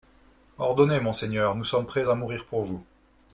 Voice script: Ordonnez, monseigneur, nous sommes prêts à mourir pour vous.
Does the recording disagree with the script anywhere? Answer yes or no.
no